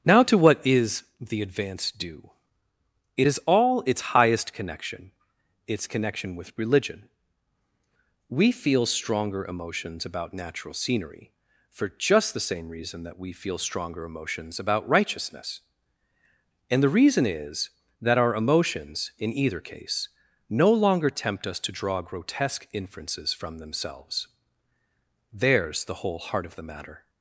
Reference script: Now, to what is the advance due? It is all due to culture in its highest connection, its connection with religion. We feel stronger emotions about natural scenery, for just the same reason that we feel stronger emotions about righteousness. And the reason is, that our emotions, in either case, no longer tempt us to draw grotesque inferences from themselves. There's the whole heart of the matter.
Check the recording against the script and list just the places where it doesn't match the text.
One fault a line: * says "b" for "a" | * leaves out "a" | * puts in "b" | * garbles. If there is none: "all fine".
* leaves out "due to culture in"